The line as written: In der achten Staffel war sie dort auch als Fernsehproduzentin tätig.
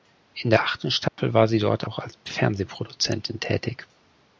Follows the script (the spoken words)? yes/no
yes